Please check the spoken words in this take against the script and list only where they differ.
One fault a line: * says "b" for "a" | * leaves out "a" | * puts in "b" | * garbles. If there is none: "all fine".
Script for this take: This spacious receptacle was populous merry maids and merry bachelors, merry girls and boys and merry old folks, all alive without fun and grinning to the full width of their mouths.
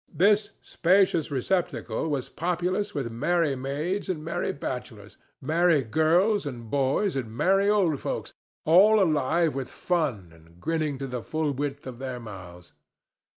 * puts in "with"
* says "with" for "without"